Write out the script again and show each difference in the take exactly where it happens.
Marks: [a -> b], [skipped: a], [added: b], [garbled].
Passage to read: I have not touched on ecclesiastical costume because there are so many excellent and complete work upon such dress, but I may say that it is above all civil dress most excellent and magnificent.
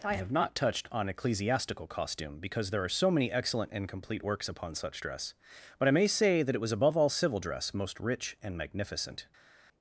I have not touched on ecclesiastical costume because there are so many excellent and complete [work -> works] upon such dress, but I may say that it [is -> was] above all civil dress most [excellent -> rich] and magnificent.